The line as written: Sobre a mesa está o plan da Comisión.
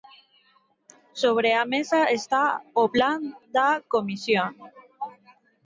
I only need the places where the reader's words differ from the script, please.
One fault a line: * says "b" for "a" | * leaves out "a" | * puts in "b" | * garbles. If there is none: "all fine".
all fine